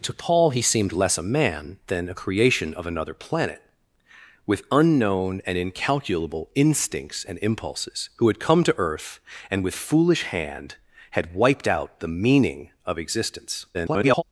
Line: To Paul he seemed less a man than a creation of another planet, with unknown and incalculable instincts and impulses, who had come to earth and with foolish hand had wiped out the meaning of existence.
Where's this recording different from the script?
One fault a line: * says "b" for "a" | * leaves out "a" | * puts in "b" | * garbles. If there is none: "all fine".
* garbles